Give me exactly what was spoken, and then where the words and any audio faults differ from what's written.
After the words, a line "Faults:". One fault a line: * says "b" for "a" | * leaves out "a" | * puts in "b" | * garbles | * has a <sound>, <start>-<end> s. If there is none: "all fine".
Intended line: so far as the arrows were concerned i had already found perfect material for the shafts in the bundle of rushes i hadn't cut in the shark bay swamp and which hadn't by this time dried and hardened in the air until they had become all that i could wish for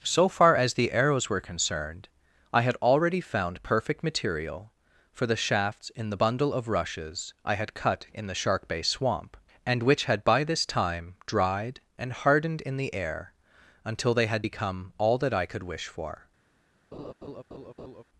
so far as the arrows were concerned i had already found perfect material for the shafts in the bundle of rushes i had cut in the shark bay swamp and which had by this time dried and hardened in the air until they had become all that i could wish for
Faults:
* says "had" for "hadn't"
* says "had" for "hadn't"
* has a laugh, 16.9-18.0 s